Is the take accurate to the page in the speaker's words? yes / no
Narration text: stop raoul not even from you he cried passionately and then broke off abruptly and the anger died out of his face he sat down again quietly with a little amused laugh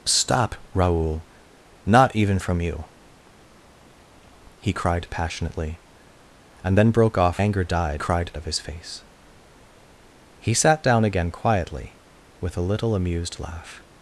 no